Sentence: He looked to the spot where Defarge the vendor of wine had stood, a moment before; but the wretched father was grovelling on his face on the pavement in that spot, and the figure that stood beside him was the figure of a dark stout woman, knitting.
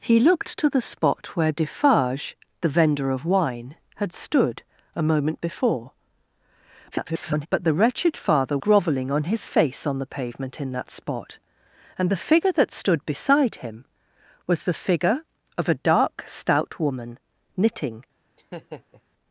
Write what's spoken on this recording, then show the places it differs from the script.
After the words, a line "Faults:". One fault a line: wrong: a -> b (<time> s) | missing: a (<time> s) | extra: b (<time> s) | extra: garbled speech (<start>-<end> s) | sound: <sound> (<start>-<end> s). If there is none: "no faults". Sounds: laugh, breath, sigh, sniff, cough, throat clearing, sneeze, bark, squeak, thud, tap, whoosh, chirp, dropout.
He looked to the spot where Defarge the vendor of wine had stood, a moment before; [garbled] but the wretched father grovelling on his face on the pavement in that spot, and the figure that stood beside him was the figure of a dark stout woman, knitting.
Faults:
extra: garbled speech (6.9-7.5 s)
missing: was (8.6 s)
sound: laugh (18.3-19.0 s)